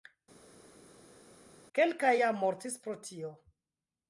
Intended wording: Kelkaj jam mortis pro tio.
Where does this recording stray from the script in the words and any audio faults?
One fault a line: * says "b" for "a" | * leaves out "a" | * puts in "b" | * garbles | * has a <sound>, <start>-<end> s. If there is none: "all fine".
all fine